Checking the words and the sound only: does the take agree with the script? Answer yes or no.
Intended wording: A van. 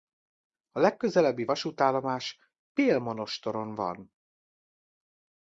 no